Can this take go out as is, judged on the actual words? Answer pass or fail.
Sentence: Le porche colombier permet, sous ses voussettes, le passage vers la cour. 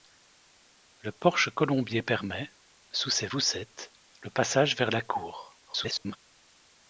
fail